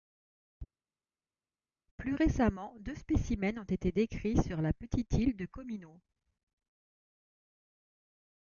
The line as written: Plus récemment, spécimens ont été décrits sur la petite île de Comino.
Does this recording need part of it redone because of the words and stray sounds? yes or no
yes